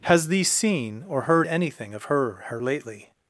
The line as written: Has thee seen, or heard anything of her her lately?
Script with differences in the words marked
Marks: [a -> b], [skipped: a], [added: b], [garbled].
Has thee seen, or heard anything of her her lately?